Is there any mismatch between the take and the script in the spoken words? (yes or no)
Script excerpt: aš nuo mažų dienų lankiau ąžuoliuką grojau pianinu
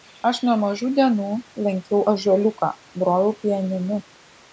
no